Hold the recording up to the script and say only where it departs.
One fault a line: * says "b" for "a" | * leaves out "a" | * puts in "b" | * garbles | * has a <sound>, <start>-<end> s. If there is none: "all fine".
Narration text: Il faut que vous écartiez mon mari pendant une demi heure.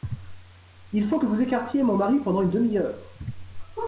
all fine